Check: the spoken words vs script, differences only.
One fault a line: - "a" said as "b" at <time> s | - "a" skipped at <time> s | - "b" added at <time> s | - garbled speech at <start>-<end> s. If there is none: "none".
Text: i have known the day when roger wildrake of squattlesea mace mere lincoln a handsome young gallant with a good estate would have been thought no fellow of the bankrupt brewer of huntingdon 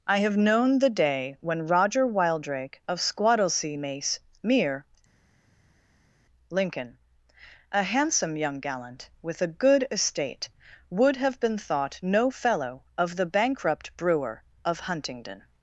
none